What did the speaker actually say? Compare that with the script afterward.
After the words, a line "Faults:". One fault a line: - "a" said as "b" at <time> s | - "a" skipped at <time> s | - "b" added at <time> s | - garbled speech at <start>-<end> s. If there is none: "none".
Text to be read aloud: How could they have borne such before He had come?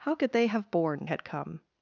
How could they have borne had come?
Faults:
- "such before He" skipped at 1.1 s